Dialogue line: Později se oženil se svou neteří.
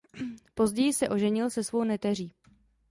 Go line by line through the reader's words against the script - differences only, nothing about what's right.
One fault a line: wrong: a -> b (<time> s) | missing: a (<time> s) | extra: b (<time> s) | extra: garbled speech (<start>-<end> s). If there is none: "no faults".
no faults